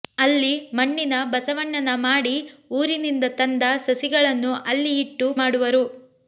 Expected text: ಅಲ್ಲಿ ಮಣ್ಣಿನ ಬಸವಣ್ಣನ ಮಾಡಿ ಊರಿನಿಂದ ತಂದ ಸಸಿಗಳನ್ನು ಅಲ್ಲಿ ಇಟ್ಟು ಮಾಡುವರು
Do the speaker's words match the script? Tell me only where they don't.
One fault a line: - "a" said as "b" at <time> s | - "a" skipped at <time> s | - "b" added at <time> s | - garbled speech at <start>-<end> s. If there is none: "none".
none